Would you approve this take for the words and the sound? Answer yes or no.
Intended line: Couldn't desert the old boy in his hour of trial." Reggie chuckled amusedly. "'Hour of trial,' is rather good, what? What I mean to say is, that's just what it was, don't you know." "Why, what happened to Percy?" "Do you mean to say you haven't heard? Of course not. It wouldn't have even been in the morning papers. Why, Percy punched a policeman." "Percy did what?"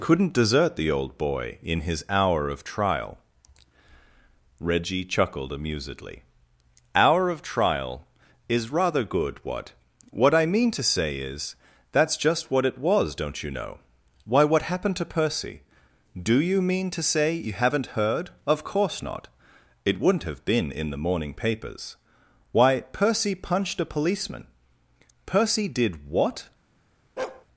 no